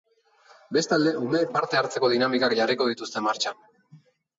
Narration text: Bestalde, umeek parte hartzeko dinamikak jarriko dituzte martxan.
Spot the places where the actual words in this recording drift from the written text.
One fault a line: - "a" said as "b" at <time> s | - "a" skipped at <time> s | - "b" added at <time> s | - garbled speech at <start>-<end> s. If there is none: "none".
none